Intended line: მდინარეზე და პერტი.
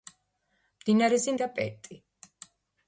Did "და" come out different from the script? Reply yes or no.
no